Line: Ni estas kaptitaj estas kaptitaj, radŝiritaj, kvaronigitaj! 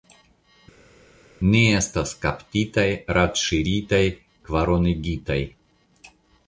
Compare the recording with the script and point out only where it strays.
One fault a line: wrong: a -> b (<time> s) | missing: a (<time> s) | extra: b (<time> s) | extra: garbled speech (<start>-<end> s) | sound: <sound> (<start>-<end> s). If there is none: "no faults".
missing: estas kaptitaj (2.9 s)